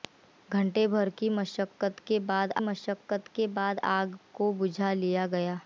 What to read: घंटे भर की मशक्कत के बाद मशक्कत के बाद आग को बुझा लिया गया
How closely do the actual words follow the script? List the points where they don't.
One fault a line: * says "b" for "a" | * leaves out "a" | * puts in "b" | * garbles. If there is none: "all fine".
all fine